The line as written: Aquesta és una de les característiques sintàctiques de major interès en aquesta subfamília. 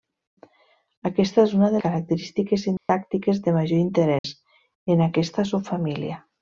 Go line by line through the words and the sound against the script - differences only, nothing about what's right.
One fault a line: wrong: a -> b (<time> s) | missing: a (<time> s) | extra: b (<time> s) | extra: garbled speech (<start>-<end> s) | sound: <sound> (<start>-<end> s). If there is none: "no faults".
missing: les (1.8 s)
sound: dropout (2.8-2.9 s)
sound: dropout (4.2-4.2 s)